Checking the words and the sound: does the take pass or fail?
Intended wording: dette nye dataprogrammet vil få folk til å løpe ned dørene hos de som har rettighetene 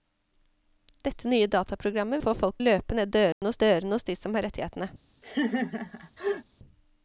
fail